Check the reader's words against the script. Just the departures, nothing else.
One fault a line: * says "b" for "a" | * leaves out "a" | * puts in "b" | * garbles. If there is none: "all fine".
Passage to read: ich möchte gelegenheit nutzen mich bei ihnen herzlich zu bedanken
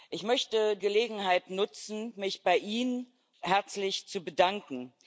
all fine